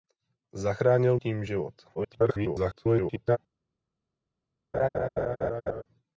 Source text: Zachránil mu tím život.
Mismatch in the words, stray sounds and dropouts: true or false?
true